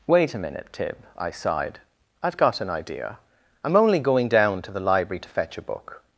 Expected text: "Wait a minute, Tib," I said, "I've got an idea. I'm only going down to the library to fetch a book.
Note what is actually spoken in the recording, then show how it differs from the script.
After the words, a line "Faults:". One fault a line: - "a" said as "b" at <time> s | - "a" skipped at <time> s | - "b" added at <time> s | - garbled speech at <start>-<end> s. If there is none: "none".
"Wait a minute, Tib," I sighed, "I've got an idea. I'm only going down to the library to fetch a book.
Faults:
- "said" said as "sighed" at 1.3 s